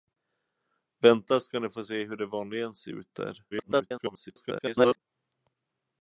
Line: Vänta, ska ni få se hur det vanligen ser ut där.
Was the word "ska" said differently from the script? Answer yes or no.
no